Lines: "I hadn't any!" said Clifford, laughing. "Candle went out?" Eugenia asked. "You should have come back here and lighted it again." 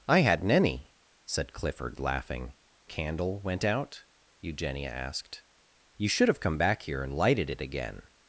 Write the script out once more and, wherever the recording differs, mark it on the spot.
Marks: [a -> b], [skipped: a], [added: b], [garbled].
"I hadn't any!" said Clifford, laughing. "Candle went out?" Eugenia asked. "You should have come back here and lighted it again."